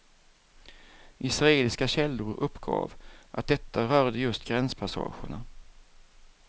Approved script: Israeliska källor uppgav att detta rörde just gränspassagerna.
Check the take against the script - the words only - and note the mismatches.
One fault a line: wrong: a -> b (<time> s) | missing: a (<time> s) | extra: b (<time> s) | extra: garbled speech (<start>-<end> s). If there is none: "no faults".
no faults